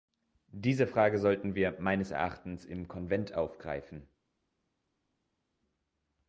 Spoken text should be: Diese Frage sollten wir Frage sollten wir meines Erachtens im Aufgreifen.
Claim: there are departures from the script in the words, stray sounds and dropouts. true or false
true